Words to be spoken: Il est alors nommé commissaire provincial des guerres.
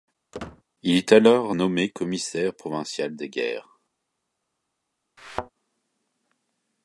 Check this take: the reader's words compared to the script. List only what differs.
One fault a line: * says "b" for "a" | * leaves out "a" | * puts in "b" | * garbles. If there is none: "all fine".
all fine